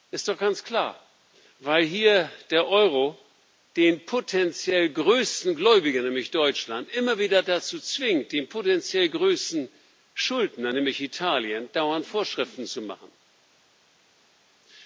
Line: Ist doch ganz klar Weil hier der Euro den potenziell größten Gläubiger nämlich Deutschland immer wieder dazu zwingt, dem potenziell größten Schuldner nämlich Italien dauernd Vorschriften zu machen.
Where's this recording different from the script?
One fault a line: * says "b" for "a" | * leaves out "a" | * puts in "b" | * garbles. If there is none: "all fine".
all fine